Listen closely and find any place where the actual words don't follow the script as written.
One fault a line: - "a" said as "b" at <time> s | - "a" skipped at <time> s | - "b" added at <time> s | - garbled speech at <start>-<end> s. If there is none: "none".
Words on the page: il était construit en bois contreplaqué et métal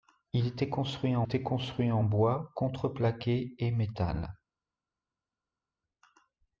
- "était construit en" added at 1.2 s